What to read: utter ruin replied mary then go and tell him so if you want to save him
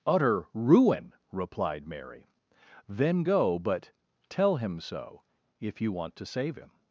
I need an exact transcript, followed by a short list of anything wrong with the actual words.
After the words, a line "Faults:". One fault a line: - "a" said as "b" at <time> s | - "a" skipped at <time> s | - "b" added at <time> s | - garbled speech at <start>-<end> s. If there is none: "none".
utter ruin replied mary then go but tell him so if you want to save him
Faults:
- "and" said as "but" at 3.6 s